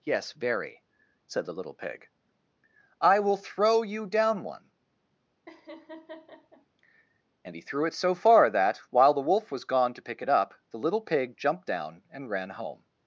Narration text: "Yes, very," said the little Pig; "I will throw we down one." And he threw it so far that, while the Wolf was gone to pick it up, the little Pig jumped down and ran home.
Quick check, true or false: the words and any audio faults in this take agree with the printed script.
false